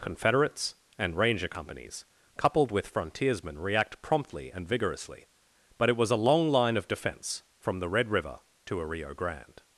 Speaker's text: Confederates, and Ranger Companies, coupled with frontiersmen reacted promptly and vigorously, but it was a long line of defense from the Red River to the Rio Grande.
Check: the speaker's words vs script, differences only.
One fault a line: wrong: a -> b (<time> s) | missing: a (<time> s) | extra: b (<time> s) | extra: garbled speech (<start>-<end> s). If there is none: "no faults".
wrong: reacted -> react (3.6 s)
wrong: the -> a (8.8 s)